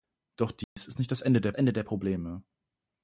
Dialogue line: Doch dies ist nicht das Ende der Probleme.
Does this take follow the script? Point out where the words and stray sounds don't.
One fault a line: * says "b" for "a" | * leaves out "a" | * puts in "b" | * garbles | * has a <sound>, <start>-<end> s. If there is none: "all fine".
* has a dropout, 0.6-0.8 s
* puts in "Ende der"